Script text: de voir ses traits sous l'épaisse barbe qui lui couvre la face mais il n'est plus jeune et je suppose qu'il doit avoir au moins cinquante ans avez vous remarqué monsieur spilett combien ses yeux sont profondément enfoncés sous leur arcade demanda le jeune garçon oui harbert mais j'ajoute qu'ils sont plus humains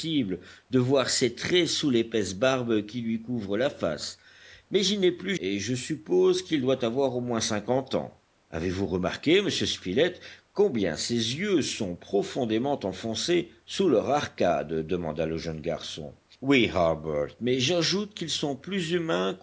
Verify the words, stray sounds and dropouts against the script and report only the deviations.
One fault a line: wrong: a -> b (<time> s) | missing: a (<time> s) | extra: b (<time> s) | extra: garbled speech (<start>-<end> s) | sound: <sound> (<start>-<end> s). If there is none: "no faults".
missing: jeune (5.3 s)